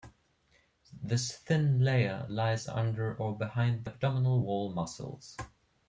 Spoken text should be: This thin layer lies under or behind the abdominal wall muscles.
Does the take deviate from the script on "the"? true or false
true